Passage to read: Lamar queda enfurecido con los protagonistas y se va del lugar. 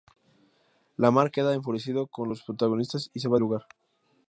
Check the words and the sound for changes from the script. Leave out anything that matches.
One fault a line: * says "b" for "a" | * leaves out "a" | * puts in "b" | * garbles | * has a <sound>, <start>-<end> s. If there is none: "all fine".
* leaves out "del"